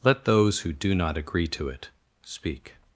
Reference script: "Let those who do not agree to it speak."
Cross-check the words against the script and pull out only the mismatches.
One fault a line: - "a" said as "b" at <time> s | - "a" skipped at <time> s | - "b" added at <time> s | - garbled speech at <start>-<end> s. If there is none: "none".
none